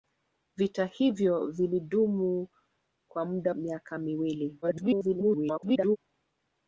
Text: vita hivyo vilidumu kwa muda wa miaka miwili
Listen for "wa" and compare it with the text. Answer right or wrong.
wrong